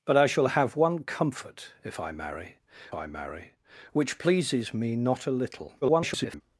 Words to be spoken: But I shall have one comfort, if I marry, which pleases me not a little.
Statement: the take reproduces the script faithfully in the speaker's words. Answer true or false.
false